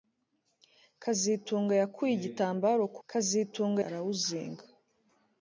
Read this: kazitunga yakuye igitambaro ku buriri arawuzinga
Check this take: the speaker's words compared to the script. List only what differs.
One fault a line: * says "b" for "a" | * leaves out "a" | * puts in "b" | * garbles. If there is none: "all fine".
* says "kazitunga" for "buriri"